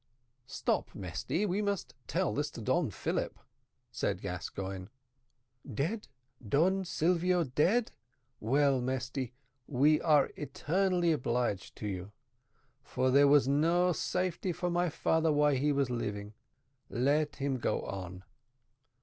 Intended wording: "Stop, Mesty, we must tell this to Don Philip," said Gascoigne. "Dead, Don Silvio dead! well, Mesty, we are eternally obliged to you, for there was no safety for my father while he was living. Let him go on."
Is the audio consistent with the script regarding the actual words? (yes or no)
yes